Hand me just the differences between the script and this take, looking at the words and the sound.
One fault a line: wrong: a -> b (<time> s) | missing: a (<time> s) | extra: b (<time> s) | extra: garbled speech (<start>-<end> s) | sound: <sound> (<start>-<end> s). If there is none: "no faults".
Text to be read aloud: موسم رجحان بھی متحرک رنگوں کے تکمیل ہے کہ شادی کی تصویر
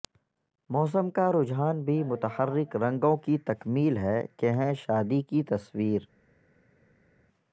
extra: کا (1.1 s)
wrong: کے -> کی (3.2 s)
extra: ہیں (4.5 s)